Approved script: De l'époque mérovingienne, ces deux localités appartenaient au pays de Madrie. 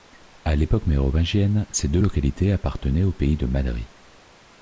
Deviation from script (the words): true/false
true